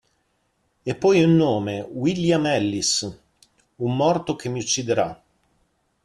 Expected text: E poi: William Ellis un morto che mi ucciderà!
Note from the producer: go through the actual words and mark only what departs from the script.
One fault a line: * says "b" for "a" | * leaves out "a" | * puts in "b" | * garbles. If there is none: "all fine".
* puts in "un nome"